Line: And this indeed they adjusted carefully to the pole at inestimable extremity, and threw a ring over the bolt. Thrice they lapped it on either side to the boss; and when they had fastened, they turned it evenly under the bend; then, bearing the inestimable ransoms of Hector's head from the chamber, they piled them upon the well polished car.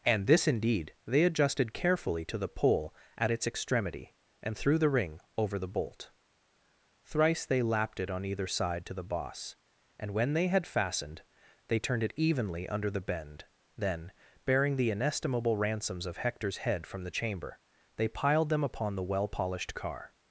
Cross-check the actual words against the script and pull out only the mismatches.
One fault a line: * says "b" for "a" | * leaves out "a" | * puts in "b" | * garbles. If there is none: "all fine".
* says "its" for "inestimable"
* says "the" for "a"